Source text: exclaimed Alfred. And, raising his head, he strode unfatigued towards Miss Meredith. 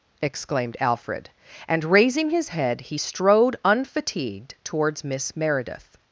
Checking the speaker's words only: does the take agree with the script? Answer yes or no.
yes